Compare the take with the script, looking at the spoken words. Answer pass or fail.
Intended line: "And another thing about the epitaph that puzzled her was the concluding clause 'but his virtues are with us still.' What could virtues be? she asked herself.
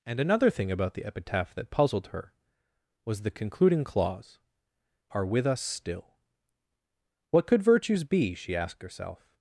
fail